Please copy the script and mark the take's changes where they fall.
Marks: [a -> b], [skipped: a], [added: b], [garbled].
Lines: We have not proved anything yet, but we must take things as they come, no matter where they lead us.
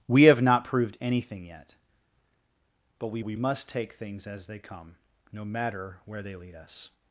We have not proved anything yet, but we [added: we] must take things as they come, no matter where they lead us.